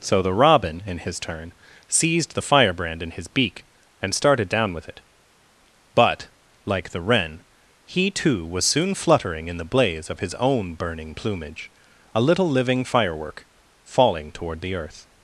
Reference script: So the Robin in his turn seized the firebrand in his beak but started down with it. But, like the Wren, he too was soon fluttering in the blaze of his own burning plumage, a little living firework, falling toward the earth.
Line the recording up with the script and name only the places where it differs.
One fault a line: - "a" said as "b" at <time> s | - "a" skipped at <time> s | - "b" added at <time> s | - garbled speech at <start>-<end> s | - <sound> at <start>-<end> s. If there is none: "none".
- "but" said as "and" at 4.0 s